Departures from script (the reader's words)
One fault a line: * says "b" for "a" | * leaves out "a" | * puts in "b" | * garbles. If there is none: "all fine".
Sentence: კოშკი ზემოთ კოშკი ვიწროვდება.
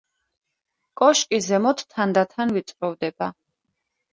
* says "თანდათან" for "კოშკი"